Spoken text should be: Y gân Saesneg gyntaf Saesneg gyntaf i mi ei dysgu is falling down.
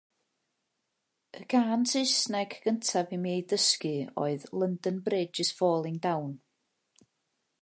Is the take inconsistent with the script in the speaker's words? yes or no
yes